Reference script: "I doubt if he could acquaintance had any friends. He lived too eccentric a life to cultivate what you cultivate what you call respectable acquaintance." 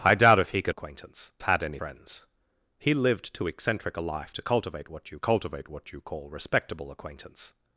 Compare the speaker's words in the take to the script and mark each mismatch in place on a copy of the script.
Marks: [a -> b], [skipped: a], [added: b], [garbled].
"I doubt if he could acquaintance had any friends. He lived too eccentric a life to cultivate what you cultivate what you call respectable acquaintance."